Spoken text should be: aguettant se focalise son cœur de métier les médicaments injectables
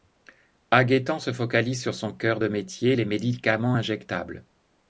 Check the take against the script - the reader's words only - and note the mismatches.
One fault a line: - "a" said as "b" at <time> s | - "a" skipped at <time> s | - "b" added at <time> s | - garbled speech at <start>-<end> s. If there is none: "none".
- "sur" added at 1.8 s